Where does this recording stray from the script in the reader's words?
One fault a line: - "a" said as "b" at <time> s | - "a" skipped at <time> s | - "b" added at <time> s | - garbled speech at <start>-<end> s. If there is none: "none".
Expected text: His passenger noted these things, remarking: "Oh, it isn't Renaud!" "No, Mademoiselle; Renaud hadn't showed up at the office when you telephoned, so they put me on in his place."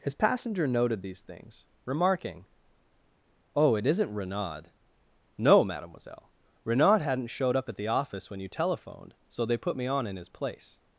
none